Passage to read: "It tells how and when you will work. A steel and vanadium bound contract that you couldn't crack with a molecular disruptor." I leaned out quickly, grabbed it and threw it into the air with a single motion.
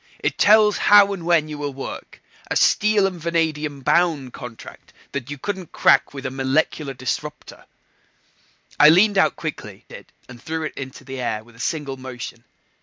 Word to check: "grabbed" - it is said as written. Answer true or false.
false